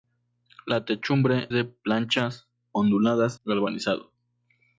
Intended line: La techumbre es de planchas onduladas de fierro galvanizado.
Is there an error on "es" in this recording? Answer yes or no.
yes